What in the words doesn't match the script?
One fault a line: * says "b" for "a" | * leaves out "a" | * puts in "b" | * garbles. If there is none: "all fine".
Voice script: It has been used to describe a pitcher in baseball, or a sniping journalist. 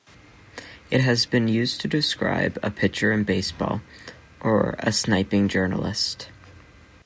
all fine